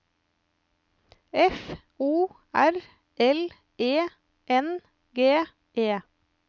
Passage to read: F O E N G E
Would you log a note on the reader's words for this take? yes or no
yes